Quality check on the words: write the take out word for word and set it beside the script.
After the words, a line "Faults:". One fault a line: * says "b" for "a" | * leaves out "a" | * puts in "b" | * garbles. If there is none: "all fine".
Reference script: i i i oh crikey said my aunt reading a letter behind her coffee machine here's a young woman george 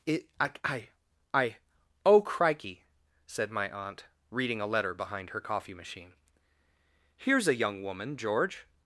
it i i i oh crikey said my aunt reading a letter behind her coffee machine here's a young woman george
Faults:
* puts in "it"